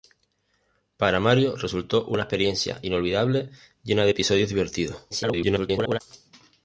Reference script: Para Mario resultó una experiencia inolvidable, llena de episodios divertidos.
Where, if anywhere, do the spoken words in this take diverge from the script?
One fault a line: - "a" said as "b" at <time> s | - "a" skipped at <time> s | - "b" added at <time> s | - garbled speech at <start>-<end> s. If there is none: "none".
- garbled speech at 5.1-6.0 s